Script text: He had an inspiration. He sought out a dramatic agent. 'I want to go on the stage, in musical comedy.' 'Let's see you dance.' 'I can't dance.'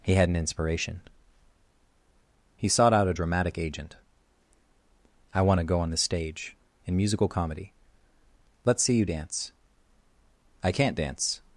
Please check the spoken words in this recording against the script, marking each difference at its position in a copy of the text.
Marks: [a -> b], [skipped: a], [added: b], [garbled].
He had an inspiration. He sought out a dramatic agent. 'I want to go on the stage, in musical comedy.' 'Let's see you dance.' 'I can't dance.'